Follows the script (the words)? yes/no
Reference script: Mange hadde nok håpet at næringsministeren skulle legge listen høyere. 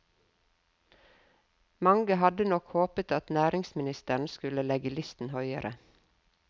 yes